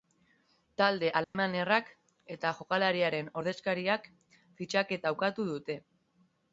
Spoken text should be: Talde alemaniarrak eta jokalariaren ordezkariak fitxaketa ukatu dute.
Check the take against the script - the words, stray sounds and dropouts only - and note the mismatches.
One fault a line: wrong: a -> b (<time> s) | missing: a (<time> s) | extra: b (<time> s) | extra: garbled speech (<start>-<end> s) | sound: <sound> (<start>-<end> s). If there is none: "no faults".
sound: dropout (1.2-1.3 s)